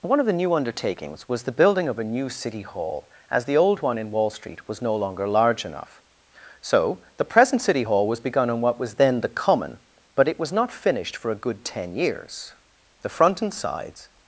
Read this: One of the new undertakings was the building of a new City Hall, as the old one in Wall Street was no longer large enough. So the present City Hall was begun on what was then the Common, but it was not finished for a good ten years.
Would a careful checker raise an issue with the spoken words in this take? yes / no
yes